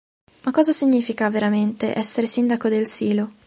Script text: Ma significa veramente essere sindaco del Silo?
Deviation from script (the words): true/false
true